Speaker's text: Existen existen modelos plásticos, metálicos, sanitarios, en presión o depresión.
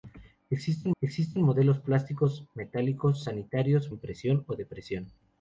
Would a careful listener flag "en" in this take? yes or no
no